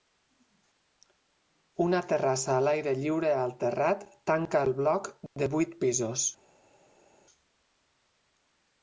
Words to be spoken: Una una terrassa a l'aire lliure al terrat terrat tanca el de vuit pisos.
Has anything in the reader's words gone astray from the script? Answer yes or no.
yes